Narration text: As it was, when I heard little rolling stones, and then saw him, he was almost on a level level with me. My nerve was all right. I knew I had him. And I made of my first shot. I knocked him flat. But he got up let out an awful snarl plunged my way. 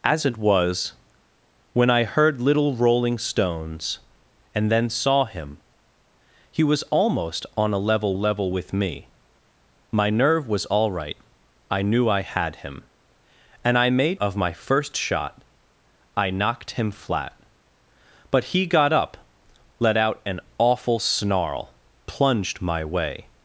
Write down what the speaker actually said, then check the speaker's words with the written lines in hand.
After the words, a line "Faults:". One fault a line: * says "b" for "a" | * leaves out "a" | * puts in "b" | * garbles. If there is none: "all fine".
As it was, when I heard little rolling stones, and then saw him, he was almost on a level level with me. My nerve was all right. I knew I had him. And I made of my first shot. I knocked him flat. But he got up let out an awful snarl plunged my way.
Faults:
all fine